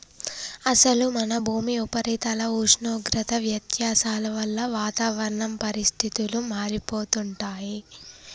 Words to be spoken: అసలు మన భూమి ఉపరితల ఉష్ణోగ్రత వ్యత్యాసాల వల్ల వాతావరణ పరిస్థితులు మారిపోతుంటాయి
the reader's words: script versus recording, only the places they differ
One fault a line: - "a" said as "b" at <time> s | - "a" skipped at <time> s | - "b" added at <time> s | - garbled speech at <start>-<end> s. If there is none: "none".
none